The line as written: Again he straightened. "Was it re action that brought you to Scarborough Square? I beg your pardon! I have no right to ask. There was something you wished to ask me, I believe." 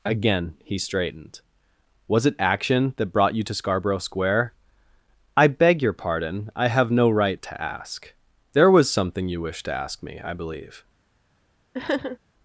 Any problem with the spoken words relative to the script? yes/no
yes